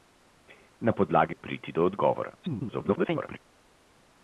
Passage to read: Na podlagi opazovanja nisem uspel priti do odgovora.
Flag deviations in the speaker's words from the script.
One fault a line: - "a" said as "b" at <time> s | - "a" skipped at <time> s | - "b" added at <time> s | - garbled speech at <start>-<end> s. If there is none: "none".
- "opazovanja nisem uspel" skipped at 1.4 s
- garbled speech at 2.4-3.4 s